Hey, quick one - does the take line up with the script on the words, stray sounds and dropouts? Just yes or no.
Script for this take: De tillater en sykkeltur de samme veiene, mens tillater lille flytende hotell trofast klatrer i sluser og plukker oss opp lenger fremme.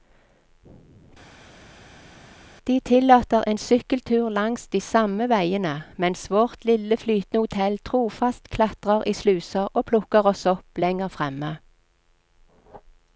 no